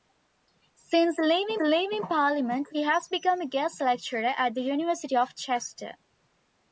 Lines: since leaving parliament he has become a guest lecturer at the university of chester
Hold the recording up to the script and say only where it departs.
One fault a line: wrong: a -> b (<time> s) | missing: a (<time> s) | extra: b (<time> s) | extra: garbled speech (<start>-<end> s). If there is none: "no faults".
extra: leaving (1.6 s)